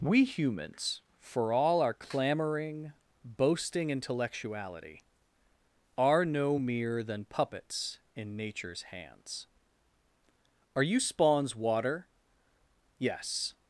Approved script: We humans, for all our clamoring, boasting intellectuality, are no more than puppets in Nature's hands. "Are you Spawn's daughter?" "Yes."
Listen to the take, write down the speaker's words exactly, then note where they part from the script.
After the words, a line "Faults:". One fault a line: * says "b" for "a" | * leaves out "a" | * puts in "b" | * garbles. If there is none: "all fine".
We humans, for all our clamoring, boasting intellectuality, are no mere than puppets in Nature's hands. "Are you Spawn's water?" "Yes."
Faults:
* says "mere" for "more"
* says "water" for "daughter"